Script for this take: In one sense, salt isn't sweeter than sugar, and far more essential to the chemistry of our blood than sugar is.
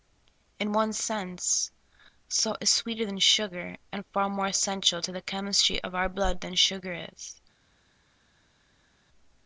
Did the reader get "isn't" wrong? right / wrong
wrong